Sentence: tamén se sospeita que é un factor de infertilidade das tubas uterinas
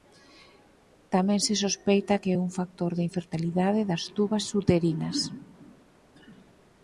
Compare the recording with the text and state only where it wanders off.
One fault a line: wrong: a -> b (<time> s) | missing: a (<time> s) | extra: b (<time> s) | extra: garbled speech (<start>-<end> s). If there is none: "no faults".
no faults